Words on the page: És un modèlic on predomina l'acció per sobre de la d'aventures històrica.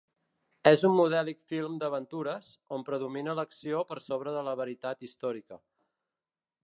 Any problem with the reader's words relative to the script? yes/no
yes